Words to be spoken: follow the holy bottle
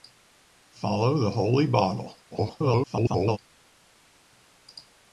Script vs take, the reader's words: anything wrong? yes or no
yes